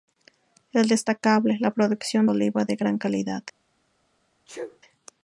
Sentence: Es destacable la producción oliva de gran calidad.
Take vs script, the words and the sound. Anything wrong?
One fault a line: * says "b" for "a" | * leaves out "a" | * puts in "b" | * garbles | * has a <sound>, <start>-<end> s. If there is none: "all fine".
* has a sneeze, 4.5-4.8 s